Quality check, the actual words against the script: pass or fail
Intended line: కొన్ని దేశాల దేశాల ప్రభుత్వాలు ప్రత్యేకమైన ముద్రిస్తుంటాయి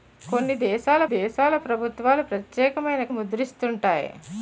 pass